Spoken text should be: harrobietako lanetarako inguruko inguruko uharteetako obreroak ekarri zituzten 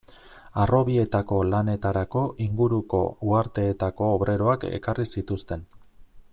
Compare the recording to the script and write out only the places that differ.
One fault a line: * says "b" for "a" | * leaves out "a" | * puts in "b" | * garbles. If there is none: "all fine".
* leaves out "inguruko"